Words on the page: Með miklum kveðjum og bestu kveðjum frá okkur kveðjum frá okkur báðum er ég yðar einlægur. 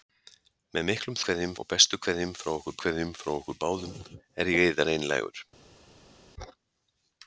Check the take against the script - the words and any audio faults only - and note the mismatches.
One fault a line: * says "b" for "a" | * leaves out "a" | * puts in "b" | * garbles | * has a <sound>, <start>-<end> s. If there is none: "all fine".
all fine